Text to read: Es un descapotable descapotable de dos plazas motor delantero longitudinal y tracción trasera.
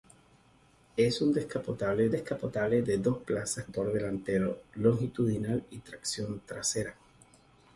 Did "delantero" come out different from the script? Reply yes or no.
no